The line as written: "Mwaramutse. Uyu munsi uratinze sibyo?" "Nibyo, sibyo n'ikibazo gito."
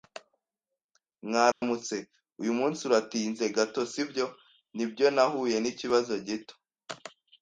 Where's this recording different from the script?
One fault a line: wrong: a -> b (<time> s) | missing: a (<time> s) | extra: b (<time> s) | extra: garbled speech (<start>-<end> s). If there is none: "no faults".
extra: gato (3.6 s)
wrong: sibyo -> nahuye (5.2 s)